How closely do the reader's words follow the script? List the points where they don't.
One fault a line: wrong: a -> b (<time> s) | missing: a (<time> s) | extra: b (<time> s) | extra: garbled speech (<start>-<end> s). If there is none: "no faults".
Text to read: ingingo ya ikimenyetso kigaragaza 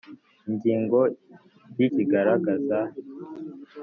missing: ikimenyetso (1.9 s)